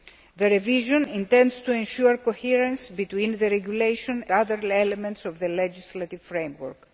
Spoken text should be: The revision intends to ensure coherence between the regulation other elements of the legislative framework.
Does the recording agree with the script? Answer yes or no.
yes